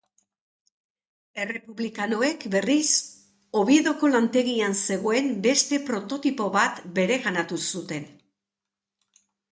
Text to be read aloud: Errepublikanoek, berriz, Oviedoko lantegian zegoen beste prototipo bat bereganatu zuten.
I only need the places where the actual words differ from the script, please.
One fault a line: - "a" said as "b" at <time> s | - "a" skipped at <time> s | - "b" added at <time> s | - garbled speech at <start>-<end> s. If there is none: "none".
none